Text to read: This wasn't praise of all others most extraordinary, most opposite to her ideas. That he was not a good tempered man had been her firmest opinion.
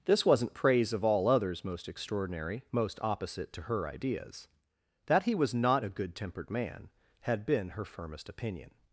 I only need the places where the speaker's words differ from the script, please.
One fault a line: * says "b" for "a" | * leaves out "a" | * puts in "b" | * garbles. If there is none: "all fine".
all fine